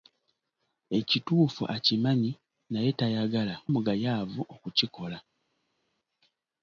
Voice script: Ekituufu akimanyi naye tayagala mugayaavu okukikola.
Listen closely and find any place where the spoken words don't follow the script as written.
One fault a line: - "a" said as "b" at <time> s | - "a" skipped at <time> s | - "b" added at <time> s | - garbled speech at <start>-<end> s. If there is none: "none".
none